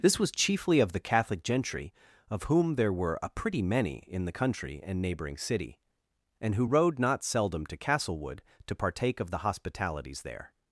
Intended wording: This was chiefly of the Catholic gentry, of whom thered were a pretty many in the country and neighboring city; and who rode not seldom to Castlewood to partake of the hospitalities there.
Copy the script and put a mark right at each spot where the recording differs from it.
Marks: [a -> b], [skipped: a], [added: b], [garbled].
This was chiefly of the Catholic gentry, of whom [thered -> there] were a pretty many in the country and neighboring city; and who rode not seldom to Castlewood to partake of the hospitalities there.